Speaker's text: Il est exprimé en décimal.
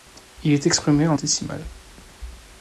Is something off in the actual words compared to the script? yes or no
no